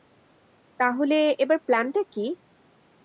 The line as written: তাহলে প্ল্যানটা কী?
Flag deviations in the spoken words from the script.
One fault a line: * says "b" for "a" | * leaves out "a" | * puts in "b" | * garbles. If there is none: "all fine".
* puts in "এবার"